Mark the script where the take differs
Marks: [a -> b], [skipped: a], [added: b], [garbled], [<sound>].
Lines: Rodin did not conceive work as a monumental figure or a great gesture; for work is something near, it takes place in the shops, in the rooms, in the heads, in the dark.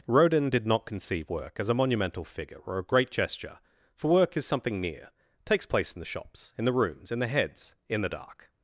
Rodin did not conceive work as a monumental figure or a great gesture; for work is something near, [skipped: it] takes place in the shops, in the rooms, in the heads, in the dark.